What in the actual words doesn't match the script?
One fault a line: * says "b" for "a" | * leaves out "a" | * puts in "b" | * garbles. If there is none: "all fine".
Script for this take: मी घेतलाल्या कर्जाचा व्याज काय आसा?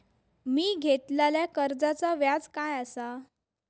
all fine